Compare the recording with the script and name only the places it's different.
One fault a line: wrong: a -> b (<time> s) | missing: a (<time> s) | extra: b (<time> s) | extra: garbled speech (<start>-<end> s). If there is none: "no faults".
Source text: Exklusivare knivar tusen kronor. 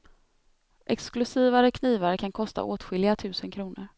extra: kan kosta åtskilliga (2.1 s)